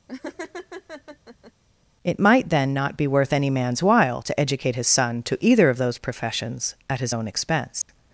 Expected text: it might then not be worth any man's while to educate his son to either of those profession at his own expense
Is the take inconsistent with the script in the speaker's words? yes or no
yes